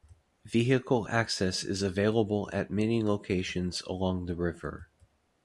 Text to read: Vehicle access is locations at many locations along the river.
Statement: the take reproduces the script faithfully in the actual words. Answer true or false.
false